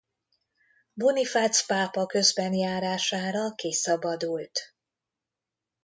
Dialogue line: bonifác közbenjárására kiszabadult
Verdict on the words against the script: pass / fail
fail